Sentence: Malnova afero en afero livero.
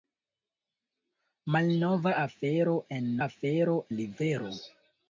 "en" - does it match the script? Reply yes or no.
yes